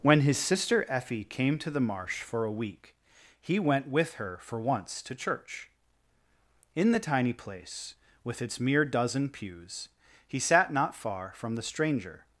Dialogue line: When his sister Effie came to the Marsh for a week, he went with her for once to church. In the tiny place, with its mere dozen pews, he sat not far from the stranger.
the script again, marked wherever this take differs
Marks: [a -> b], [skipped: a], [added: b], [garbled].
When his sister Effie came to the Marsh for a week, he went with her for once to church. In the tiny place, with its mere dozen pews, he sat not far from the stranger.